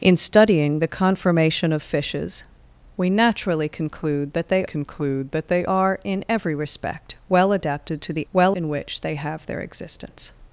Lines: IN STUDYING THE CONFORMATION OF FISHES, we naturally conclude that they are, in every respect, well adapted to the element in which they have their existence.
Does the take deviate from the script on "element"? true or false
true